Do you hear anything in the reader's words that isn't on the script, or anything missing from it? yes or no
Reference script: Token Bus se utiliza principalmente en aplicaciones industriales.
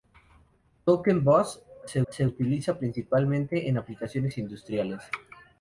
yes